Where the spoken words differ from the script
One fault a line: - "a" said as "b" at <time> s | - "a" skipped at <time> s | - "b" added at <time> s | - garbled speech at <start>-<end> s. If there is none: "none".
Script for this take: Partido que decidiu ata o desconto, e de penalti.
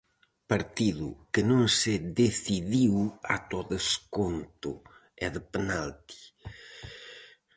- "non se" added at 1.5 s